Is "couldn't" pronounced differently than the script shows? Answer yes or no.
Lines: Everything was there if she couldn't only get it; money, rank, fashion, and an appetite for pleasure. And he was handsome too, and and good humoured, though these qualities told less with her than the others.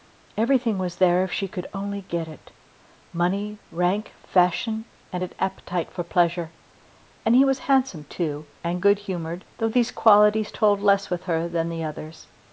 yes